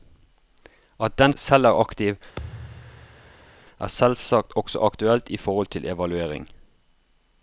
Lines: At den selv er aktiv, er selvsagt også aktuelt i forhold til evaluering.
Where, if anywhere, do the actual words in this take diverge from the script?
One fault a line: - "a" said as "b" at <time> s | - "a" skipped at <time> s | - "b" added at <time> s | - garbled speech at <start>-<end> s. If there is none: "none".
none